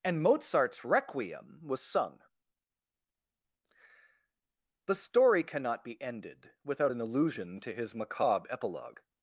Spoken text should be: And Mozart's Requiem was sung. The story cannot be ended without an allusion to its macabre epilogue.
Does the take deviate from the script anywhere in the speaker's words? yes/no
yes